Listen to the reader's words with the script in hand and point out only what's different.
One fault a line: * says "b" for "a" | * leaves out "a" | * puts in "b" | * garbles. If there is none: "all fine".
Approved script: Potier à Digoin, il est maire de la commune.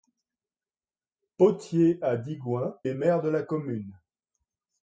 * leaves out "il"